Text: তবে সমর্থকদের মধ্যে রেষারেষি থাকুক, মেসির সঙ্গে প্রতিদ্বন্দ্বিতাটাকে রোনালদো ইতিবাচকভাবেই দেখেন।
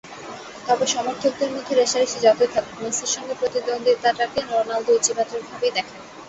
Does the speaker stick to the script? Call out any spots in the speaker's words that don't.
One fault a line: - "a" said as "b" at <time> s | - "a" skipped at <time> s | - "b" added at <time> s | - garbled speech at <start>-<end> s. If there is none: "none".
- "যতই" added at 2.2 s